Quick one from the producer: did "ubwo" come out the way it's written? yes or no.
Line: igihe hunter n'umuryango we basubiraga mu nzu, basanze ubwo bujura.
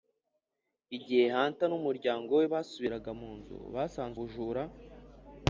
no